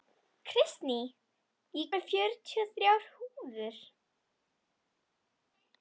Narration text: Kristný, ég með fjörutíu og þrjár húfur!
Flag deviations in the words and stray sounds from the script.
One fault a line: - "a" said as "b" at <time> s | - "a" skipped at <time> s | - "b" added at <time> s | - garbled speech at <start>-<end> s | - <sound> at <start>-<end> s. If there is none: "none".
none